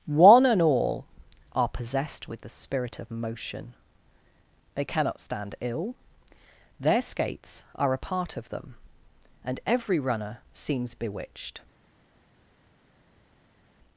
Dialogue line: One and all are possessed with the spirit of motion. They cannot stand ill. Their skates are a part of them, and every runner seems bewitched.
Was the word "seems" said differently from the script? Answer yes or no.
no